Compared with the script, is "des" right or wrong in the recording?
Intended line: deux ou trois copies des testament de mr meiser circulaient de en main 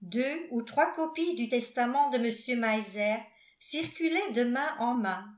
wrong